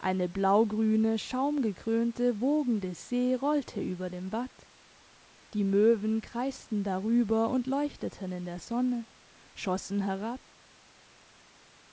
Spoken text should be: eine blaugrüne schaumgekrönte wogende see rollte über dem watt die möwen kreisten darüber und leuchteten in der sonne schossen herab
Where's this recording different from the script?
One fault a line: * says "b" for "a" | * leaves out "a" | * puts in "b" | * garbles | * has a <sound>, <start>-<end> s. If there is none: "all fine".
all fine